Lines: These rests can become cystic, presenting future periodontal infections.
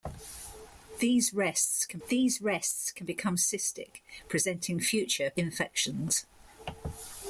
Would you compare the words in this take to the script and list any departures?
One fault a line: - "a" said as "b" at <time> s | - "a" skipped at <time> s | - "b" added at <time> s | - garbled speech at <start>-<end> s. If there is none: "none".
- "these rests can" added at 2.1 s
- "periodontal" skipped at 5.3 s